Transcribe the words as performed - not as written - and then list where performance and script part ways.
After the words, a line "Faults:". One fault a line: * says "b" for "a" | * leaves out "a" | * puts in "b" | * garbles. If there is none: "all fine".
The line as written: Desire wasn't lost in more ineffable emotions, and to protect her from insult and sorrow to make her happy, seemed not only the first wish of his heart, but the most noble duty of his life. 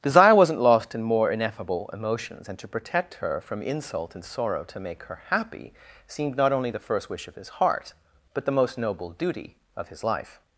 Desire wasn't lost in more ineffable emotions, and to protect her from insult and sorrow to make her happy, seemed not only the first wish of his heart, but the most noble duty of his life.
Faults:
all fine